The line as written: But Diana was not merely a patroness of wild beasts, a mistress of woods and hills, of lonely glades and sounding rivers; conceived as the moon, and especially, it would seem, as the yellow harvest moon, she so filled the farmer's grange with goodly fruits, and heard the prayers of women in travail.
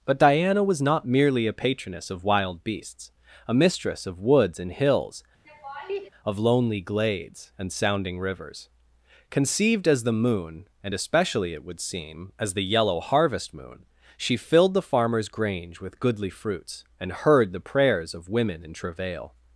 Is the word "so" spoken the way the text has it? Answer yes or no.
no